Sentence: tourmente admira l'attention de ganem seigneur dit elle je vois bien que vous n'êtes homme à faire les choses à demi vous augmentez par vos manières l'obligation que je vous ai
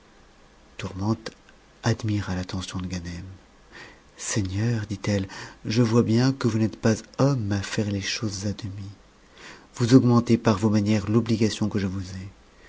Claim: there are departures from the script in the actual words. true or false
true